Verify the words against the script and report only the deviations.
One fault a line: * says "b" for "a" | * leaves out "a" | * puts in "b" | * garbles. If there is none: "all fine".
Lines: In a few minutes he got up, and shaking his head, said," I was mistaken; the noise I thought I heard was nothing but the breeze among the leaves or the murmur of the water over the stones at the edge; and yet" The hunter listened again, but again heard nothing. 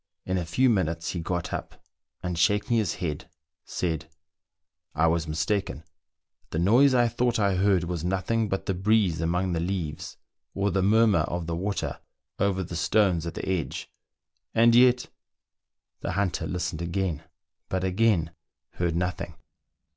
all fine